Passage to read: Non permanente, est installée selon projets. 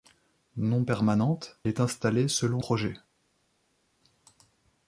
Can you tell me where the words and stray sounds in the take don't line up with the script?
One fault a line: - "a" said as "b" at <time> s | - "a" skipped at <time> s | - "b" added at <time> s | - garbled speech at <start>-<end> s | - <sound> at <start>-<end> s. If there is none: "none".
none